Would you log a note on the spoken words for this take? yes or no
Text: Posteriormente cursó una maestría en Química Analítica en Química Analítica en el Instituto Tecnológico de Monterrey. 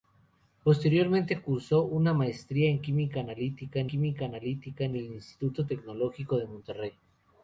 no